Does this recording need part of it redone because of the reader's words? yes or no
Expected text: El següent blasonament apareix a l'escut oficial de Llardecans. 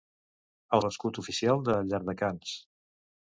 yes